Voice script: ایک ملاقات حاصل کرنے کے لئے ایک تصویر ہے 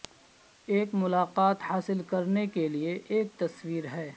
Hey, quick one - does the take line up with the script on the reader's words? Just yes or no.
yes